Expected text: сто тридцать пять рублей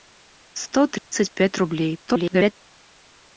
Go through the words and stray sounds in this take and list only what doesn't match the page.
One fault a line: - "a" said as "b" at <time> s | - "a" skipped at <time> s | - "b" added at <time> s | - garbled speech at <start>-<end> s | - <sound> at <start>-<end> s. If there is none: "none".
- dropout at 1.0-1.1 s
- garbled speech at 2.1-2.5 s